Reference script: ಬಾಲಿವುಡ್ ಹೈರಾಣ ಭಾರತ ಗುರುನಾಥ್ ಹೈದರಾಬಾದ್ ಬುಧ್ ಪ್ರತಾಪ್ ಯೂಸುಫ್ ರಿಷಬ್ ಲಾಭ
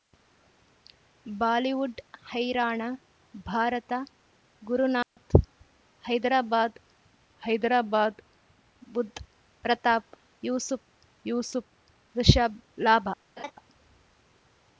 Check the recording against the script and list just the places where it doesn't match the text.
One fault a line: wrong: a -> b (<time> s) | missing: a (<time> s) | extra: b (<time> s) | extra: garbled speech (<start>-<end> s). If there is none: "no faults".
extra: ಹೈದರಾಬಾದ್ (7.4 s)
extra: ಯೂಸುಫ್ (11.2 s)